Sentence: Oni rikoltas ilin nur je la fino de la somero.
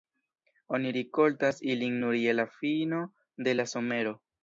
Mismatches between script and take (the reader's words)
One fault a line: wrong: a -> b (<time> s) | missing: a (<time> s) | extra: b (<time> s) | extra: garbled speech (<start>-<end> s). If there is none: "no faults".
no faults